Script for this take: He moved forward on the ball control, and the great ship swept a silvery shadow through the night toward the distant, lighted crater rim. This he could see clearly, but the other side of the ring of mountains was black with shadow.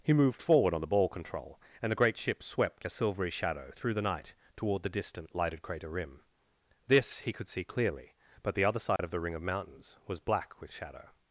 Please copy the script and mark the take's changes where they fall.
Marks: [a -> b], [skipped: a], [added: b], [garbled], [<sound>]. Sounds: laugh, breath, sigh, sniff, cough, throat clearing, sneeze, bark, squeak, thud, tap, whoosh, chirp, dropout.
He moved forward on the ball control, and the great ship swept a silvery shadow through the night toward the distant, lighted crater rim. This he could see clearly, but the other side [dropout] of the ring of mountains was black with shadow.